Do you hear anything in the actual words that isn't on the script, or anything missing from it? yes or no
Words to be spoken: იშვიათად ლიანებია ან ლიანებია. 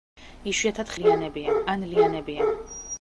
no